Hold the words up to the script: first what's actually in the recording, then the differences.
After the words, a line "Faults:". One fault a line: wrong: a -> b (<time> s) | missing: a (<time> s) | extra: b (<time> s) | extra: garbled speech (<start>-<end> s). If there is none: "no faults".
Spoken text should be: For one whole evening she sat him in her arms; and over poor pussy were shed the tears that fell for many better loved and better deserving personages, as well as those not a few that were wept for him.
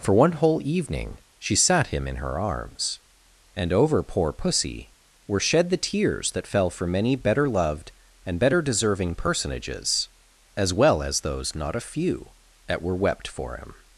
For one whole evening she sat him in her arms; and over poor pussy were shed the tears that fell for many better loved and better deserving personages, as well as those not a few that were wept for him.
Faults:
no faults